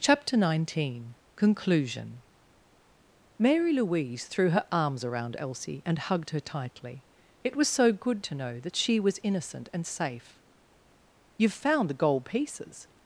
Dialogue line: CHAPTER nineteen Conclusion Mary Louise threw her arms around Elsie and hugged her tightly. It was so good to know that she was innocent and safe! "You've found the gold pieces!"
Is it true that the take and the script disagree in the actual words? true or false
false